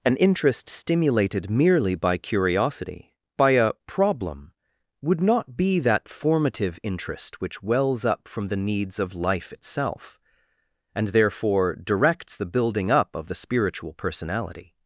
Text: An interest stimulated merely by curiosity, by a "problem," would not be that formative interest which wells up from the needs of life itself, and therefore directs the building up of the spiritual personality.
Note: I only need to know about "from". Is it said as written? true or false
true